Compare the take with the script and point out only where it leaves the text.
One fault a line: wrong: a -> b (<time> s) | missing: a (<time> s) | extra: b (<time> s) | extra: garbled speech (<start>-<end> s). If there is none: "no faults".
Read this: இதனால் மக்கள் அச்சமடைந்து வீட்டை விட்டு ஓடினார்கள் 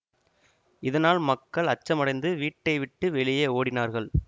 extra: வெளியே (3.1 s)